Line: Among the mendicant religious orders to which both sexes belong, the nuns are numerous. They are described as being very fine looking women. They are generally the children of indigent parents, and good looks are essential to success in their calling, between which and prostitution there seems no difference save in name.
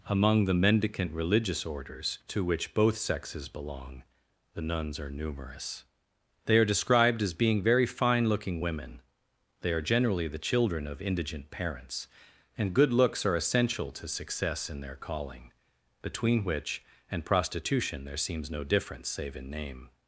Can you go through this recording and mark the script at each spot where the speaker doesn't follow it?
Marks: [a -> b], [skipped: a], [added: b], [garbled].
Among the mendicant religious orders to which both sexes belong, the nuns are numerous. They are described as being very fine looking women. They are generally the children of indigent parents, and good looks are essential to success in their calling, between which and prostitution there seems no difference save in name.